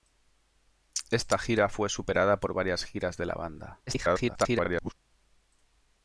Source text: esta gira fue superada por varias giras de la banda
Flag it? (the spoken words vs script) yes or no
yes